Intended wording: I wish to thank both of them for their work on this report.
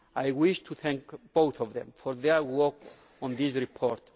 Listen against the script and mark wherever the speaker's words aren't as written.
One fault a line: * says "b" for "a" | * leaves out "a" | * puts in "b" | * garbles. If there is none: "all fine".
all fine